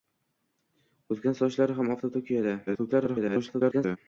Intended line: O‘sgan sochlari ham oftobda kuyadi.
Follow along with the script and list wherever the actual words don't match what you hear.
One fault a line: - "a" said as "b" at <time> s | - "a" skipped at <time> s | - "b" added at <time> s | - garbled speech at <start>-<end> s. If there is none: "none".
- garbled speech at 2.7-4.0 s